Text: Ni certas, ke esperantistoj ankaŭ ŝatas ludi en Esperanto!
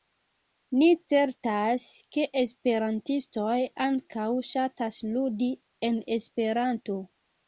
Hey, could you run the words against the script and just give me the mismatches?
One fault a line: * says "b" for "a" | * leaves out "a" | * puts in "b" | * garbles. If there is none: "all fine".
all fine